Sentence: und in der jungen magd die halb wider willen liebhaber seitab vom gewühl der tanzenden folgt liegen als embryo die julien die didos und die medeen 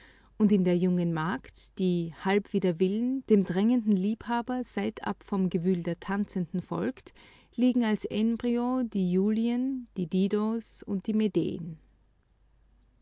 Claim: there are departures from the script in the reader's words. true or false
true